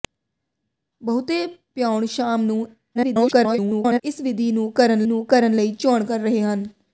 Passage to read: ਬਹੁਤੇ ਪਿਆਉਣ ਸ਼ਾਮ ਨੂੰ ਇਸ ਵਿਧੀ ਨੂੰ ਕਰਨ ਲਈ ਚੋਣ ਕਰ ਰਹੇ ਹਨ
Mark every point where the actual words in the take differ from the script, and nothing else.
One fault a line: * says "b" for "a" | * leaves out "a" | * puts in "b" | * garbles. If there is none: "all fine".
* garbles
* puts in "ਨੂੰ ਕਰਨ"